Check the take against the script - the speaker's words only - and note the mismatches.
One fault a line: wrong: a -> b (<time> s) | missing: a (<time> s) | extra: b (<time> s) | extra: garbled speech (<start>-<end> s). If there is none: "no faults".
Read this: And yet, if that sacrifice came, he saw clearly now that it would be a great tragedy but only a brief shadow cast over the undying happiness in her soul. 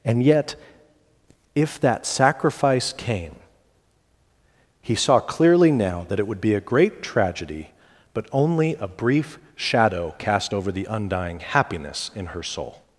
no faults